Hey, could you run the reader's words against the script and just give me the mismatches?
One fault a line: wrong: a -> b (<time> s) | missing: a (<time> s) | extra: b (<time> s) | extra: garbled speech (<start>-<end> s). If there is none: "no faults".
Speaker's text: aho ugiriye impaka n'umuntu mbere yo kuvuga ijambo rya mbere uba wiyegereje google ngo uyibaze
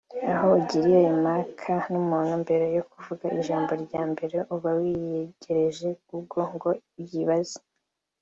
no faults